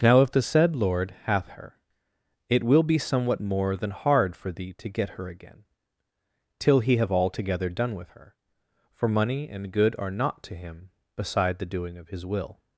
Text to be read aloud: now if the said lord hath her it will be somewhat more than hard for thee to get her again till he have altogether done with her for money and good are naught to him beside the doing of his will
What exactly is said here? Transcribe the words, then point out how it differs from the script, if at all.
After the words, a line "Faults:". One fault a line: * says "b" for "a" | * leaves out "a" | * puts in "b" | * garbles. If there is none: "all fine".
now if the said lord hath her it will be somewhat more than hard for thee to get her again till he have altogether done with her for money and good are naught to him beside the doing of his will
Faults:
all fine